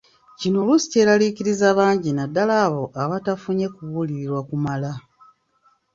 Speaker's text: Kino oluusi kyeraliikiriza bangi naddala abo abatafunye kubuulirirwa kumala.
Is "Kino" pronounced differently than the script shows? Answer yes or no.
no